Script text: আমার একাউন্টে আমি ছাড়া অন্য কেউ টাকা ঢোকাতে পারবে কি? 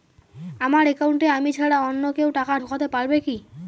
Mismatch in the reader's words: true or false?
false